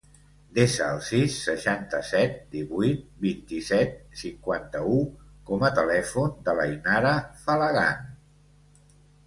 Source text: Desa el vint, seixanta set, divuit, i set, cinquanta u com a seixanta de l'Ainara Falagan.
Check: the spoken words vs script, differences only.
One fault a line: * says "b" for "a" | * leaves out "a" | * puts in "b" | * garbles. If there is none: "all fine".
* says "sis" for "vint"
* puts in "vint"
* says "telèfon" for "seixanta"